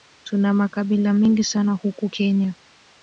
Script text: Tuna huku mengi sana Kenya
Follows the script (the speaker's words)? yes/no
no